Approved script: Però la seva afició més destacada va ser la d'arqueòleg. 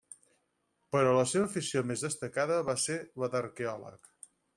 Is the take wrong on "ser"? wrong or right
right